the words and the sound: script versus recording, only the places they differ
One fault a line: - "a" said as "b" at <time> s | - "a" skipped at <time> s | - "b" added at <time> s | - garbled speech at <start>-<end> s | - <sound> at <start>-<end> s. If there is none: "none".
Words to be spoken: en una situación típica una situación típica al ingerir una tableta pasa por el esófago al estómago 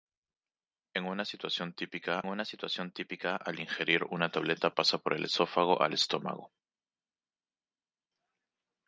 none